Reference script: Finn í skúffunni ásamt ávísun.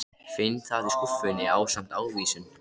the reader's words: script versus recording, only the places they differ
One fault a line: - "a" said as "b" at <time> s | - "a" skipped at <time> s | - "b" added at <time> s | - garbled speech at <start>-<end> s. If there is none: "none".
- "það" added at 0.7 s